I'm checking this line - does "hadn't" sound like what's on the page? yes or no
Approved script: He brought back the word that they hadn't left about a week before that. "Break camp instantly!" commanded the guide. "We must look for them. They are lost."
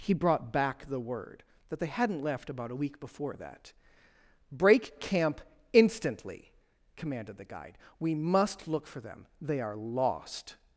yes